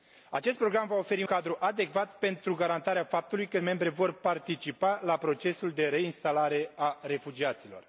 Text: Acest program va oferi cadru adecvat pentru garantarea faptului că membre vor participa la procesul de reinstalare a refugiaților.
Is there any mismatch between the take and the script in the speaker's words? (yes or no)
no